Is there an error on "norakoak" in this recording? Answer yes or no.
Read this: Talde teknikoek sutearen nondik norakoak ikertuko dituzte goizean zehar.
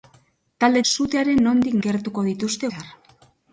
yes